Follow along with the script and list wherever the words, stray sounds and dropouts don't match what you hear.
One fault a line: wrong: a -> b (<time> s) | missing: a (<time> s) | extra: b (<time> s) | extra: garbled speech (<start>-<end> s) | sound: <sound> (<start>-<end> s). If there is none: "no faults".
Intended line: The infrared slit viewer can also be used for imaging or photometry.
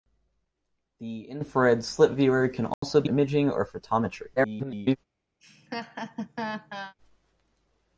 sound: dropout (2.7-2.8 s)
missing: used for (3.1 s)
extra: garbled speech (4.4-5.0 s)
sound: laugh (5.4-6.9 s)